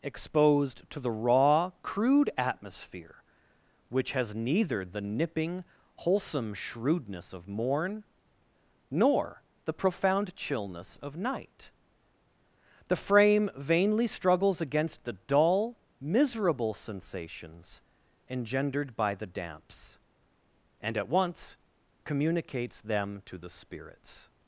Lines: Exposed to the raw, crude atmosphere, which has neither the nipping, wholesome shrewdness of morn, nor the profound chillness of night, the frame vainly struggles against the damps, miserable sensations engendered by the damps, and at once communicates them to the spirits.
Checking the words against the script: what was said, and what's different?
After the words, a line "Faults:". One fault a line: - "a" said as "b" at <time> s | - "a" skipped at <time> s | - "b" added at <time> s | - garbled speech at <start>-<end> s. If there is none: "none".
Exposed to the raw, crude atmosphere, which has neither the nipping, wholesome shrewdness of morn, nor the profound chillness of night, the frame vainly struggles against the dull, miserable sensations engendered by the damps, and at once communicates them to the spirits.
Faults:
- "damps" said as "dull" at 15.1 s